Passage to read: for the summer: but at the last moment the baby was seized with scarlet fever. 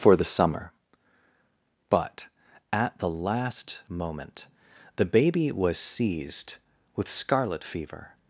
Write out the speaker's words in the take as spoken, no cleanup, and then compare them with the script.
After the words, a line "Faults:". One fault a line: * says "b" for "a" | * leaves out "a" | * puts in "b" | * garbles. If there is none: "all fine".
for the summer: but at the last moment the baby was seized with scarlet fever.
Faults:
all fine